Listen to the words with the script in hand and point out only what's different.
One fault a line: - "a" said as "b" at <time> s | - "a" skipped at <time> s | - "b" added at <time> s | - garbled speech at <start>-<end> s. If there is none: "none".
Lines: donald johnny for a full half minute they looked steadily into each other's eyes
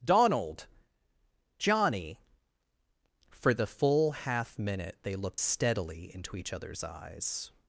- "a" said as "the" at 3.5 s